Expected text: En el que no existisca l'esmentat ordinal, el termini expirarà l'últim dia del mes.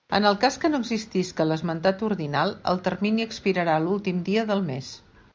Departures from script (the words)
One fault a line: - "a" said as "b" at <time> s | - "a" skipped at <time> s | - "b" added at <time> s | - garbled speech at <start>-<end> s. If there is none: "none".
- "cas" added at 0.4 s